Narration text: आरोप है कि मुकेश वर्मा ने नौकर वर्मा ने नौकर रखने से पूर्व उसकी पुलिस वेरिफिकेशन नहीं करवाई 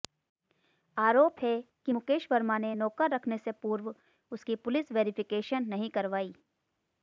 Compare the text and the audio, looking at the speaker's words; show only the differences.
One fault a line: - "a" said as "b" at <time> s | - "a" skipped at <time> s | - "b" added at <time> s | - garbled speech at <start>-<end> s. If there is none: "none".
- "वर्मा ने नौकर" skipped at 3.1 s